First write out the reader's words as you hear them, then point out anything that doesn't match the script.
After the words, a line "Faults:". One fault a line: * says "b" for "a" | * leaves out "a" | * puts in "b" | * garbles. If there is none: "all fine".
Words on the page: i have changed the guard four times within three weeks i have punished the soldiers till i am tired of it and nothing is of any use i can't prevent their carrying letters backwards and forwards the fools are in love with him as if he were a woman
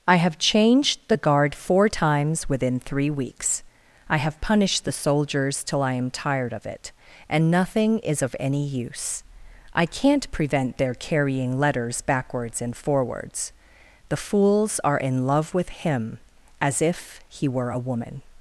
i have changed the guard four times within three weeks i have punished the soldiers till i am tired of it and nothing is of any use i can't prevent their carrying letters backwards and forwards the fools are in love with him as if he were a woman
Faults:
all fine